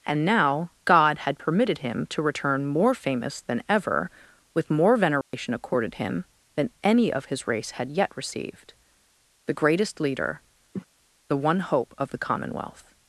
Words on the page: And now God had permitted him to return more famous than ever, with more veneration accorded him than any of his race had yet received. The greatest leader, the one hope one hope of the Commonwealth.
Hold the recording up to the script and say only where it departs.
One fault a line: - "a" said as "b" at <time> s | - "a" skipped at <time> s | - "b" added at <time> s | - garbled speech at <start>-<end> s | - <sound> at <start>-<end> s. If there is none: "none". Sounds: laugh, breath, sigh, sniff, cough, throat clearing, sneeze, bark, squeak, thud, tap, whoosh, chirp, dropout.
- dropout at 5.2-5.3 s
- cough at 10.7-10.9 s
- "one hope" skipped at 11.9 s